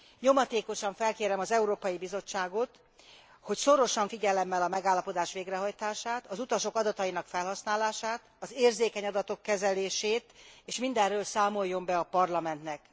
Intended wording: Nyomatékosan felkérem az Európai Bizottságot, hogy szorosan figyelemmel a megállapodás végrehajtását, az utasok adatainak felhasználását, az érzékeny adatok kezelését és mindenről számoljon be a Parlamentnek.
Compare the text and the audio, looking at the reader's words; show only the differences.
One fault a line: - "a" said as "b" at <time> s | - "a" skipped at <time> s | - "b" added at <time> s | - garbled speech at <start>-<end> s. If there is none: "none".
none